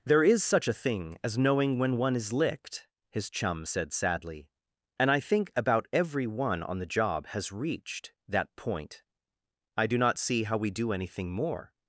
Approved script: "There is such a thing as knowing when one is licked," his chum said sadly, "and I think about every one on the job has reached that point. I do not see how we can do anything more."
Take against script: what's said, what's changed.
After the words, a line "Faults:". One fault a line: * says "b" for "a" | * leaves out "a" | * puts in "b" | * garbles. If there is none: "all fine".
"There is such a thing as knowing when one is licked," his chum said sadly, "and I think about every one on the job has reached that point. I do not see how we do anything more."
Faults:
* leaves out "can"